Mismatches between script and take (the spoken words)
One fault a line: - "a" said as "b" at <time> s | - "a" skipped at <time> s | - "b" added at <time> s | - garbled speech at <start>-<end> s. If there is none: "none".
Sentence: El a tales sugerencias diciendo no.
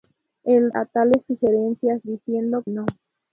none